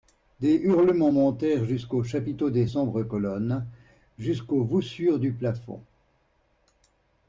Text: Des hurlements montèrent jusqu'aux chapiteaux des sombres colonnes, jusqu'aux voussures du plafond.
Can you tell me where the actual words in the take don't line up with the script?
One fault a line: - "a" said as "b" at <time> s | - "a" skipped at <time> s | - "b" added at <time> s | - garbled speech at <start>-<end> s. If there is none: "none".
none